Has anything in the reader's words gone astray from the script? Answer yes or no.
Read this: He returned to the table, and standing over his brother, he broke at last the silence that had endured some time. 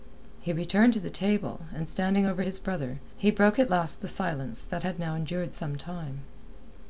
yes